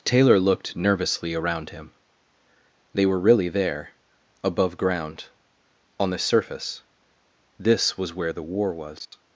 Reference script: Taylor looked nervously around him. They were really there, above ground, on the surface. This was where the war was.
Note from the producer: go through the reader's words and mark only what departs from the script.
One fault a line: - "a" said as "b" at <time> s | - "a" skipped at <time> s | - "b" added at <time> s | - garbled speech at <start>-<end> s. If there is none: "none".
none